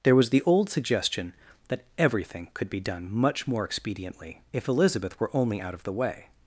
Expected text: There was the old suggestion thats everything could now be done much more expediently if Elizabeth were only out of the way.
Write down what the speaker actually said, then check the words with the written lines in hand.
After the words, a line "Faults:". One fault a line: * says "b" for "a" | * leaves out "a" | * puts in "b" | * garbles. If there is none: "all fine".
There was the old suggestion that everything could be done much more expediently if Elizabeth were only out of the way.
Faults:
* says "that" for "thats"
* leaves out "now"